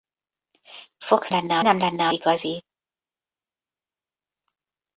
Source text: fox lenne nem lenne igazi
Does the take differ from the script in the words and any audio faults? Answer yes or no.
no